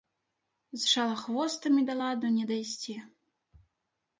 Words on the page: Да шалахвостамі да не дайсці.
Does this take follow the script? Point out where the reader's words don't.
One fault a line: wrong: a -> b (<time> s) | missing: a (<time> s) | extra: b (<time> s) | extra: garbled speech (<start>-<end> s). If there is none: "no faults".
wrong: Да -> З (0.7 s)
extra: ладу (2.0 s)